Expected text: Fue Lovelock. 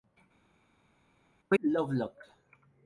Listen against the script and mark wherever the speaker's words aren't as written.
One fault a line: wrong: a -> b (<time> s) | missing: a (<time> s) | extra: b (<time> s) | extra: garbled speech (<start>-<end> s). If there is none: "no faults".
no faults